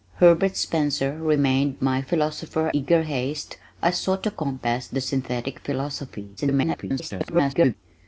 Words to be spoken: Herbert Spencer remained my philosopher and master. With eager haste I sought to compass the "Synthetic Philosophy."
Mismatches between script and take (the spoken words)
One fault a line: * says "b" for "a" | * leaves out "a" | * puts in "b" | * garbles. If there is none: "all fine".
* leaves out "and master With"
* garbles